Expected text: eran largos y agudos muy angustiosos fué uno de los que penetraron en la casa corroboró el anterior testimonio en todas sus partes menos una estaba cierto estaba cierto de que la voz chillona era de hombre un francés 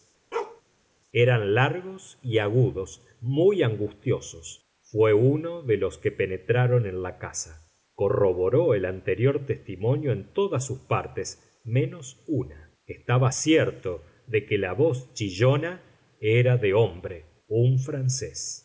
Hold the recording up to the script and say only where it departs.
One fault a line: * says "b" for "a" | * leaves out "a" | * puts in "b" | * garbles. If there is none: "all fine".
* leaves out "estaba cierto"